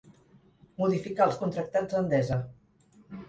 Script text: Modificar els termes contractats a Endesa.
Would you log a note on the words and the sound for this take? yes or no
yes